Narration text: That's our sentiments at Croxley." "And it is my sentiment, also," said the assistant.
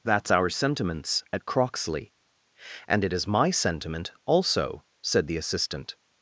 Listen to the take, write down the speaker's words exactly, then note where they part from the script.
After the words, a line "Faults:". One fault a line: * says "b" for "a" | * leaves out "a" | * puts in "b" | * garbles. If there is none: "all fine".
That's our sentiments at Croxley." "And it is my sentiment, also," said the assistant.
Faults:
all fine